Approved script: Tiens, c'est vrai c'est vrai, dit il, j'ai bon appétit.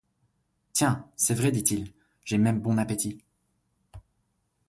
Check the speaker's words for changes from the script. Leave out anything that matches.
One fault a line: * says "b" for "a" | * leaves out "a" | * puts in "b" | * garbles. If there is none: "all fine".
* leaves out "c'est vrai"
* puts in "même"